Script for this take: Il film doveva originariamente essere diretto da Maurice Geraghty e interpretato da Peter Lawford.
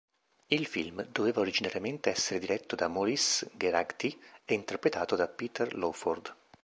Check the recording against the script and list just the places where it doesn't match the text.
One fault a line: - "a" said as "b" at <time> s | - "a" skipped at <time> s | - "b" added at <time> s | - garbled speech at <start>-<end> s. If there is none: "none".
none